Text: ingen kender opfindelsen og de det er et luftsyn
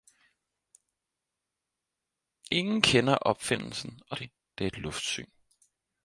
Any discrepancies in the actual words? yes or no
no